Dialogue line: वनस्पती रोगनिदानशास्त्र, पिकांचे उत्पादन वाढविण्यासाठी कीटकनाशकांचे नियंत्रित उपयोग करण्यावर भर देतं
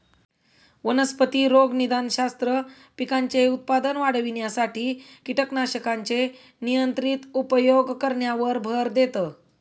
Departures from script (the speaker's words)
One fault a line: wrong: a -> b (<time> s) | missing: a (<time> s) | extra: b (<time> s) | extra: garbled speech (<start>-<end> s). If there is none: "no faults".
no faults